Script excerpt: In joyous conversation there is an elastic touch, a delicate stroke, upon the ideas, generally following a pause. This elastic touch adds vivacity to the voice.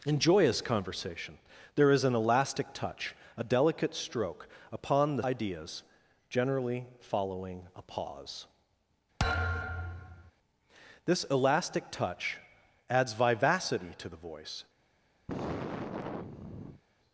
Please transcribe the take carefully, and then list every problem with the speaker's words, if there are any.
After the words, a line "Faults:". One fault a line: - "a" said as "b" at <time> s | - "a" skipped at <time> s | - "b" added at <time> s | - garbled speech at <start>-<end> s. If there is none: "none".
In joyous conversation there is an elastic touch, a delicate stroke, upon the ideas, generally following a pause. This elastic touch adds vivacity to the voice.
Faults:
none